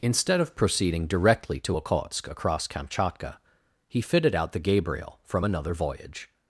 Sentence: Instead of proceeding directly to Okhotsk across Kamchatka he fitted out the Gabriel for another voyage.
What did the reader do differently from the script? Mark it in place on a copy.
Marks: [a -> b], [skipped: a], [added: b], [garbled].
Instead of proceeding directly to Okhotsk across Kamchatka he fitted out the Gabriel [for -> from] another voyage.